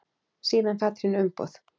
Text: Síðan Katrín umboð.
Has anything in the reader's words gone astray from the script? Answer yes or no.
no